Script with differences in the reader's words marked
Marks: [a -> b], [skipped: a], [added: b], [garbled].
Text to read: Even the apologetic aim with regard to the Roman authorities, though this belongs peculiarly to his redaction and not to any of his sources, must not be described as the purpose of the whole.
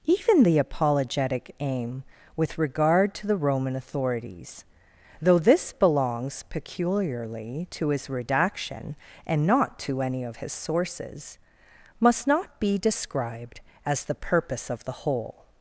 Even the apologetic aim with regard to the Roman authorities, though this belongs peculiarly to his redaction and not to any of his sources, must not be described as the purpose of the whole.